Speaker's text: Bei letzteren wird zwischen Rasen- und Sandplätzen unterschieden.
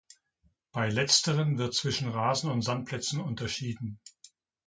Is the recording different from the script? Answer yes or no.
no